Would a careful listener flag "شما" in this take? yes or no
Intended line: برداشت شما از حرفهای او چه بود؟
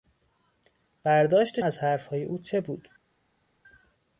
yes